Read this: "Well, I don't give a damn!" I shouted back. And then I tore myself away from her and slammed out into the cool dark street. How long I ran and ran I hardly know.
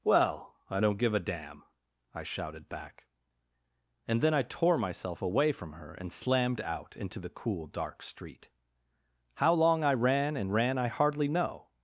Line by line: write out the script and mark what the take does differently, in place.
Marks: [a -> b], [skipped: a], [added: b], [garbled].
"Well, I don't give a damn!" I shouted back. And then I tore myself away from her and slammed out into the cool dark street. How long I ran and ran I hardly know.